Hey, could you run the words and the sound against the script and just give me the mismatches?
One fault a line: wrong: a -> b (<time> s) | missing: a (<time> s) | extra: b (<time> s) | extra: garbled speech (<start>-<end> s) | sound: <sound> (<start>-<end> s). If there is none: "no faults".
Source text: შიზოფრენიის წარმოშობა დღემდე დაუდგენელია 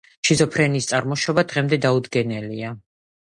no faults